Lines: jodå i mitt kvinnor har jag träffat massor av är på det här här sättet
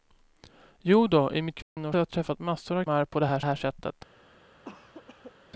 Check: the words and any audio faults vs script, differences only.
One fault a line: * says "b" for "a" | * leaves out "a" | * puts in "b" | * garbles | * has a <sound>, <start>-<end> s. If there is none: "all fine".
* has a dropout, 1.6-1.8 s
* has a cough, 4.6-5.3 s